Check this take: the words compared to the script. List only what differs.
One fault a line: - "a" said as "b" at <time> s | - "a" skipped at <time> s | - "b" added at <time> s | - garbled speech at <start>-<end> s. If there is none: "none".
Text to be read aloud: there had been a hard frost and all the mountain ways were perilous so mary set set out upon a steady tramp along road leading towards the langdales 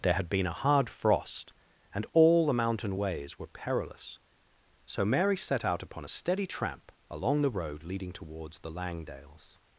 - "set" skipped at 5.6 s
- "the" added at 7.4 s